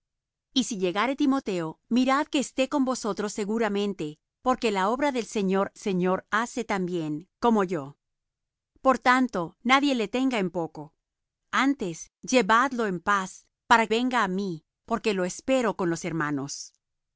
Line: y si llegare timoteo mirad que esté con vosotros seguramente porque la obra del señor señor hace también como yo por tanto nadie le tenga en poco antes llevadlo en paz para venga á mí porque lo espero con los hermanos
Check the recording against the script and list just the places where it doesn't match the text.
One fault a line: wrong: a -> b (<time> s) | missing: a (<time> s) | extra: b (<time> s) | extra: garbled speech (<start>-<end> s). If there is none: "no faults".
no faults